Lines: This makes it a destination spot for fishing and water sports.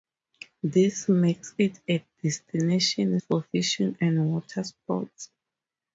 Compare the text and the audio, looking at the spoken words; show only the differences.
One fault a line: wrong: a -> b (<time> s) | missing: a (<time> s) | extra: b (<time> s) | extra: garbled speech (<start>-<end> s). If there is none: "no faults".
missing: spot (3.2 s)